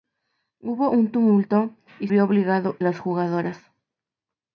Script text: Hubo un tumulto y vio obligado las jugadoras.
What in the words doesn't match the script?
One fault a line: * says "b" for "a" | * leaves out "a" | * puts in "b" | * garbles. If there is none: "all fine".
all fine